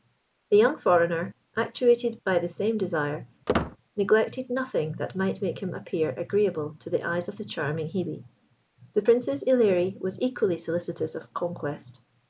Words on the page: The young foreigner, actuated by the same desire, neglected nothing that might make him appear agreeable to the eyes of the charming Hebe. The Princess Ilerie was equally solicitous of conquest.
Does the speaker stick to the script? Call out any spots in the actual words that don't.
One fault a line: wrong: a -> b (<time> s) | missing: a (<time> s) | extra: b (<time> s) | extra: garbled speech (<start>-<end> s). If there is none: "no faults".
no faults